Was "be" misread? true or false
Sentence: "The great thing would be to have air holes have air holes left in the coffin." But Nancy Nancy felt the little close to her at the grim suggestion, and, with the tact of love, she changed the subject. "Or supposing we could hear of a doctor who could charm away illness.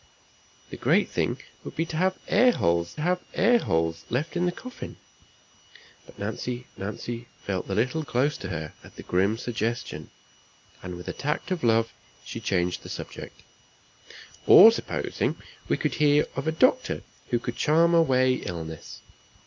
false